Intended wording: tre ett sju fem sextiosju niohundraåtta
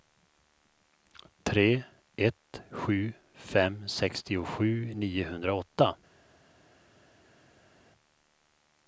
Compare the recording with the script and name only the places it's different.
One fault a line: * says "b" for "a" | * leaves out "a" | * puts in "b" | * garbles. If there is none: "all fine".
all fine